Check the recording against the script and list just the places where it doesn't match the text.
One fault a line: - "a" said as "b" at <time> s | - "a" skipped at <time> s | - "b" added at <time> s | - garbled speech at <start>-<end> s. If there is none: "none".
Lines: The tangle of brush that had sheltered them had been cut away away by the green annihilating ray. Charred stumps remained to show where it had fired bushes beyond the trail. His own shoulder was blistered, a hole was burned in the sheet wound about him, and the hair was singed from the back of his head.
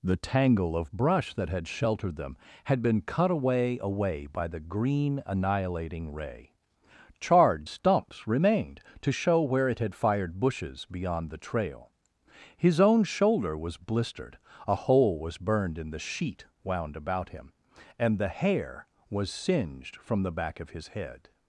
none